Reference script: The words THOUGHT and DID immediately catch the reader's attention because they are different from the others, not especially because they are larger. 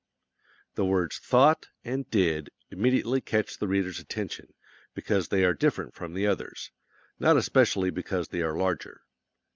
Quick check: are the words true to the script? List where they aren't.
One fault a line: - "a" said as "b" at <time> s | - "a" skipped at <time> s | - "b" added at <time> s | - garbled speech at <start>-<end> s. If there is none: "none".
none